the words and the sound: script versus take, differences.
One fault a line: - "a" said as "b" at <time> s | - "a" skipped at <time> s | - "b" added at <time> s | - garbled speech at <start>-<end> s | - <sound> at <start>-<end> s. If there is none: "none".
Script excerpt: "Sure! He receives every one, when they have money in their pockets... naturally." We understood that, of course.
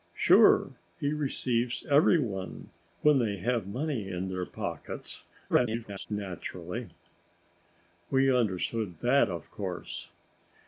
- garbled speech at 5.5-6.1 s